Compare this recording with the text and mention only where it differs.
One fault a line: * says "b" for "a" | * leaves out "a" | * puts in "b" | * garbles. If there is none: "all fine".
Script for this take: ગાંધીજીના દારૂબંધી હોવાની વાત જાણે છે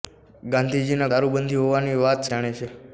all fine